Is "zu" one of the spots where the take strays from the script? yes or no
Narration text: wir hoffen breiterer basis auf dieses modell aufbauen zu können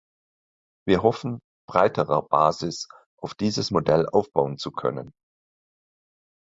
no